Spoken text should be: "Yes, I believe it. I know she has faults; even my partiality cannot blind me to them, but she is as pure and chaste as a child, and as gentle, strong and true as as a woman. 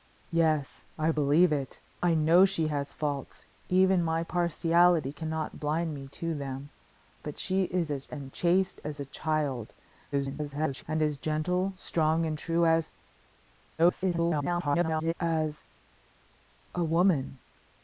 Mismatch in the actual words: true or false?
true